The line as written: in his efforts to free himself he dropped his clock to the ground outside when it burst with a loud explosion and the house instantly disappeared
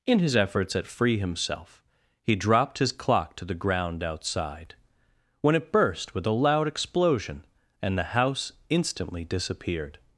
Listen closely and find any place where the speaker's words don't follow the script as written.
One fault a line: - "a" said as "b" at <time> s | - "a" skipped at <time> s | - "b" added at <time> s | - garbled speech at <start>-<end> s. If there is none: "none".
- "to" said as "at" at 0.8 s